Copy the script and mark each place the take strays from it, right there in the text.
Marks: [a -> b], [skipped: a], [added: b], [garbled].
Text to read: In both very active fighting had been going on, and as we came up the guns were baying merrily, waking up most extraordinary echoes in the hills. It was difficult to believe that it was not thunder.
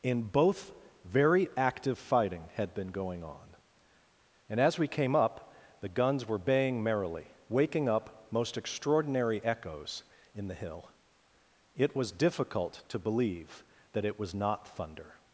In both very active fighting had been going on, and as we came up the guns were baying merrily, waking up most extraordinary echoes in the [hills. -> hill] It was difficult to believe that it was not thunder.